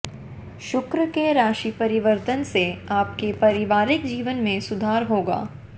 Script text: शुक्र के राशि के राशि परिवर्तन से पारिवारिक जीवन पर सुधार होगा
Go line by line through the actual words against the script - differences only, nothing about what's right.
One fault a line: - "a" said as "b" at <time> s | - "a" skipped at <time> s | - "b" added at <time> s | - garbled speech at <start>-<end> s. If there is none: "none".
- "के राशि" skipped at 1.7 s
- "आपके" added at 2.9 s
- "पर" said as "में" at 4.4 s